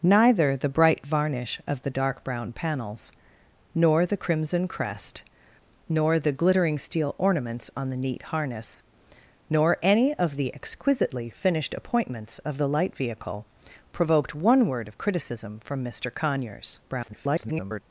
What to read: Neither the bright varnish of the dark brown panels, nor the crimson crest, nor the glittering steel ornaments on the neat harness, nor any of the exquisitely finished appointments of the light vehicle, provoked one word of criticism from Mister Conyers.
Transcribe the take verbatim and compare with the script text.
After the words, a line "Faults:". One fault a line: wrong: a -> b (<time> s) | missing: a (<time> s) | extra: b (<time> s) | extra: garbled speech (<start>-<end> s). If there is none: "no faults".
Neither the bright varnish of the dark brown panels, nor the crimson crest, nor the glittering steel ornaments on the neat harness, nor any of the exquisitely finished appointments of the light vehicle, provoked one word of criticism from Mister Conyers. [garbled]
Faults:
extra: garbled speech (16.9-17.8 s)